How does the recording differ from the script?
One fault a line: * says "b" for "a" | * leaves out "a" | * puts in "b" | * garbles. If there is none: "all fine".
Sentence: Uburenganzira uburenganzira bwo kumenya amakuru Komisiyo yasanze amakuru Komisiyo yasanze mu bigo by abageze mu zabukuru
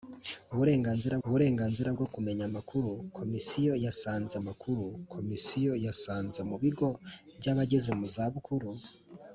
all fine